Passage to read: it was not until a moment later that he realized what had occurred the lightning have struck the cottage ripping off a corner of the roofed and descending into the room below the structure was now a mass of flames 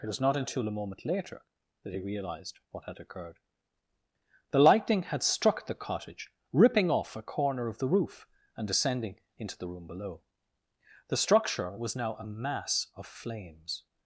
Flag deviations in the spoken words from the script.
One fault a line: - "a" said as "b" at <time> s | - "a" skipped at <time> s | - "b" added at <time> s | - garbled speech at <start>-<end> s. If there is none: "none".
- "have" said as "had" at 5.0 s
- "roofed" said as "roof" at 7.9 s